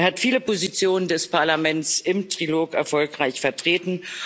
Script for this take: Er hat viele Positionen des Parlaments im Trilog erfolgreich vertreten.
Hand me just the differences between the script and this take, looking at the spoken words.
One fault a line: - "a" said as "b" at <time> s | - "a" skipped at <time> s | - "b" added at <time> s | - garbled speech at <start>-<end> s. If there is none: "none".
none